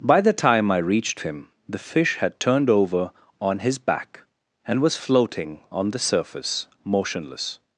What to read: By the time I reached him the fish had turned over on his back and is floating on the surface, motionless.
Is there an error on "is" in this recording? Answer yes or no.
yes